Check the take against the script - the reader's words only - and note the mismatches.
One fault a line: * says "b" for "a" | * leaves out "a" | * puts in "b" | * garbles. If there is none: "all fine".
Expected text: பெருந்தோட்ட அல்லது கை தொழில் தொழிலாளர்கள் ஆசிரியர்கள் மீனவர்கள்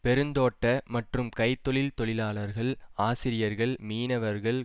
* says "மற்றும்" for "அல்லது"